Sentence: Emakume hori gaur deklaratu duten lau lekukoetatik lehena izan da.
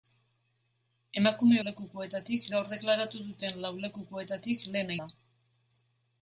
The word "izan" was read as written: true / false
false